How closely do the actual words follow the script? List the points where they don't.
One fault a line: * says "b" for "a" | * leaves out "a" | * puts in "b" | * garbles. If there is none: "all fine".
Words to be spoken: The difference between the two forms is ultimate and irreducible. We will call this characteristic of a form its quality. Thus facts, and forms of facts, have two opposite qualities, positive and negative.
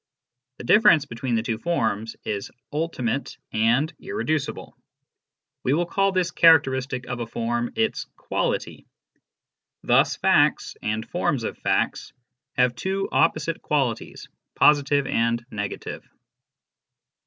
all fine